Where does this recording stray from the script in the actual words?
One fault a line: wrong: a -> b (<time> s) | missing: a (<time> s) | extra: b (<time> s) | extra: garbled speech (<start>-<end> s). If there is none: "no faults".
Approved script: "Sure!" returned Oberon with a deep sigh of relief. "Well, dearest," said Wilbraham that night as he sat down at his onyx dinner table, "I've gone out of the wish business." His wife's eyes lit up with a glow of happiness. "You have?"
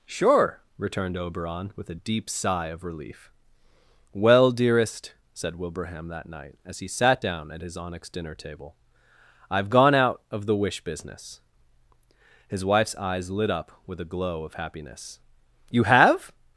no faults